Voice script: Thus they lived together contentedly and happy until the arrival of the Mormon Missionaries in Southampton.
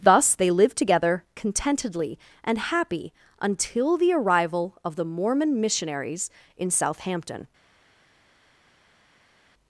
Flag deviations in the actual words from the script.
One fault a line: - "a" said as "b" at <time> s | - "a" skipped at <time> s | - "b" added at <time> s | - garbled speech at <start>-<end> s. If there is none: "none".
none